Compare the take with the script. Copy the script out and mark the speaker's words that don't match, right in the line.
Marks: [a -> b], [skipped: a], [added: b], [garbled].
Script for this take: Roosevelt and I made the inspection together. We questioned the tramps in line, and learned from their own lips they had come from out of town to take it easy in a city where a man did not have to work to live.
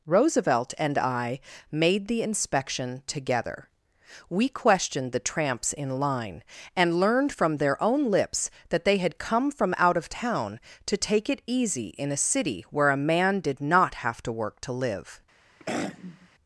Roosevelt and I made the inspection together. We questioned the tramps in line, and learned from their own lips [added: that] they had come from out of town to take it easy in a city where a man did not have to work to live.